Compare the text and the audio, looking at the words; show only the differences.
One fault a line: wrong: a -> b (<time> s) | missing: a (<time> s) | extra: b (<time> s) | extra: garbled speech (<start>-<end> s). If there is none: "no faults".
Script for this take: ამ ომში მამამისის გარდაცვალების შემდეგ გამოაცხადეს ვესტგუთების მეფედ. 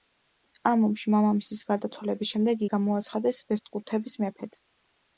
no faults